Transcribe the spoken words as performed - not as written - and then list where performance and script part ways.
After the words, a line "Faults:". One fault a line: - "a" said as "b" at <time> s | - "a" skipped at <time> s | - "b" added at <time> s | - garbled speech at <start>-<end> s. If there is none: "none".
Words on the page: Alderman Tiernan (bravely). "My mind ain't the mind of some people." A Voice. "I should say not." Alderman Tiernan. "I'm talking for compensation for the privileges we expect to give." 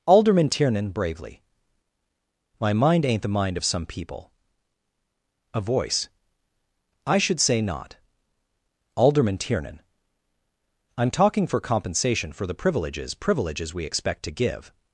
Alderman Tiernan (bravely). "My mind ain't the mind of some people." A Voice. "I should say not." Alderman Tiernan. "I'm talking for compensation for the privileges privileges we expect to give."
Faults:
- "privileges" added at 13.1 s